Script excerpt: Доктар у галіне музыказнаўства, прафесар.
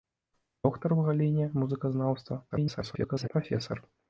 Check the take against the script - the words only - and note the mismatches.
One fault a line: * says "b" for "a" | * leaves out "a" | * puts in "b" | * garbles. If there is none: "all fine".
* garbles